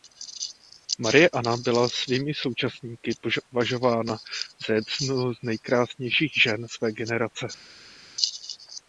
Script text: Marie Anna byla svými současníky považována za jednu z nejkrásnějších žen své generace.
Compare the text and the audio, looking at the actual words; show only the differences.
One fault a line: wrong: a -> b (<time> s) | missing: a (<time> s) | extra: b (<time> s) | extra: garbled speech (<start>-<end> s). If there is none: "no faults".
no faults